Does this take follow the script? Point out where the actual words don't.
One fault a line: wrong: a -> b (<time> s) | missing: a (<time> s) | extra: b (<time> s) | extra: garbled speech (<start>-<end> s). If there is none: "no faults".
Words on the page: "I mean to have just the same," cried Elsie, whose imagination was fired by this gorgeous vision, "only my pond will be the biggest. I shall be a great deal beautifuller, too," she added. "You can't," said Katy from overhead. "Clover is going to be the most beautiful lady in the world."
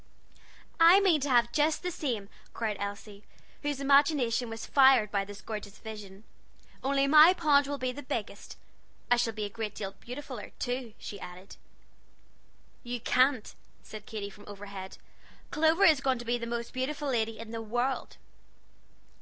no faults